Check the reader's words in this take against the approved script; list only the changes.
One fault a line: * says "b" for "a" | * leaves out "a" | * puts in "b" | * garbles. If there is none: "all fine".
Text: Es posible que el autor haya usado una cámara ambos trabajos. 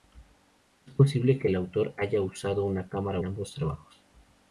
all fine